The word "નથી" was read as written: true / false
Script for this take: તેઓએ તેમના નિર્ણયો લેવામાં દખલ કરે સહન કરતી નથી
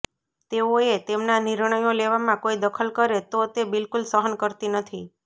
true